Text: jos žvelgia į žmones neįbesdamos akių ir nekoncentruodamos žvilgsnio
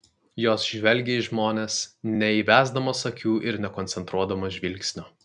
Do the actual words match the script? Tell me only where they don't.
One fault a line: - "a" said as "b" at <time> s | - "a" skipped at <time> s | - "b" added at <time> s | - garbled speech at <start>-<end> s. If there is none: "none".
none